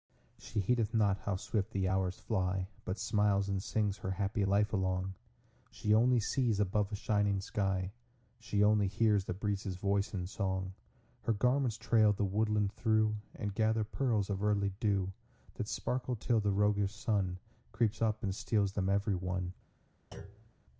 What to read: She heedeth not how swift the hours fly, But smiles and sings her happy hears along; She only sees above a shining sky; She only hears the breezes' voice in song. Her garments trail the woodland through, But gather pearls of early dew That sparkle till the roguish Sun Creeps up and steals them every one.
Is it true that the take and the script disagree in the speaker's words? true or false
true